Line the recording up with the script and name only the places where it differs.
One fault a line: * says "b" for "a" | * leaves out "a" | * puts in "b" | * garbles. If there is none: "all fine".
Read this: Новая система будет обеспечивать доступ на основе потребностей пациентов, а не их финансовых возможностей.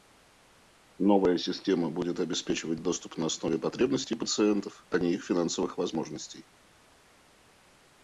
all fine